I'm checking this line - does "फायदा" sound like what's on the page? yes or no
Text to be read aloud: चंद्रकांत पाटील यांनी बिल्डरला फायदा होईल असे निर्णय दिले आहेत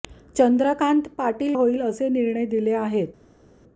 no